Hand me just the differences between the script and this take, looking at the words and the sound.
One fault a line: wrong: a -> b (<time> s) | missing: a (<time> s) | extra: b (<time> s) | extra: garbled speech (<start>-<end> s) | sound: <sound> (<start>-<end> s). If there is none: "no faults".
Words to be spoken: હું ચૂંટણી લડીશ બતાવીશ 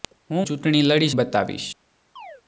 sound: chirp (2.2-2.4 s)